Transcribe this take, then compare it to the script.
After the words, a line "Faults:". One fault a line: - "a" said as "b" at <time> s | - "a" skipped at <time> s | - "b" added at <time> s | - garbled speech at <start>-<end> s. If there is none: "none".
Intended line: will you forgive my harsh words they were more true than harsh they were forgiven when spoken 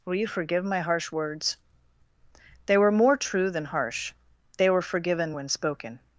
will you forgive my harsh words they were more true than harsh they were forgiven when spoken
Faults:
none